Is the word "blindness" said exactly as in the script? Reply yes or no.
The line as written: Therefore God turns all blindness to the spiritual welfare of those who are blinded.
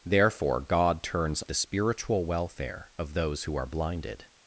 no